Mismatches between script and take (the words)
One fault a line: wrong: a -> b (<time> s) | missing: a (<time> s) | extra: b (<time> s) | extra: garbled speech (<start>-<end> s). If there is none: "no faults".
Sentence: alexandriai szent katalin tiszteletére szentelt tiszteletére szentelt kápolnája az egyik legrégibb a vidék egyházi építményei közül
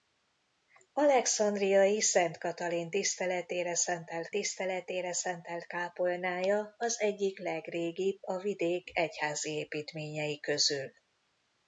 no faults